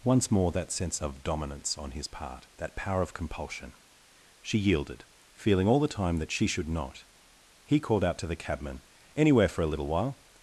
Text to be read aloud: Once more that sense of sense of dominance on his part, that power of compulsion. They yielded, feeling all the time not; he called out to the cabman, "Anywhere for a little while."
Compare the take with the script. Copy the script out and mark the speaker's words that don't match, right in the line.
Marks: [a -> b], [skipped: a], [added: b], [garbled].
Once more that sense of [skipped: sense of] dominance on his part, that power of compulsion. [They -> She] yielded, feeling all the time [added: that she should] not; he called out to the cabman, "Anywhere for a little while."